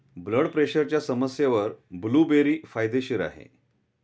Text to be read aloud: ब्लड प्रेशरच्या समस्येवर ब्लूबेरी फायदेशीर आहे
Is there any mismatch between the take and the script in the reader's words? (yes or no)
no